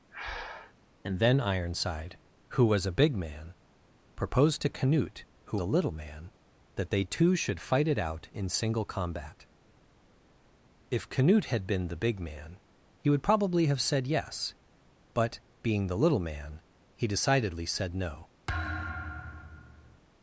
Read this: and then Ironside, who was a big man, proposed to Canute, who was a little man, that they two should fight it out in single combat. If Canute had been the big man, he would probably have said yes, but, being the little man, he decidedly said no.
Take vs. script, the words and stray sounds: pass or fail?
fail